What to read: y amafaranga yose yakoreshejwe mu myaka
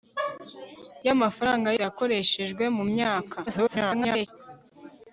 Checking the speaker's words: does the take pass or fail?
fail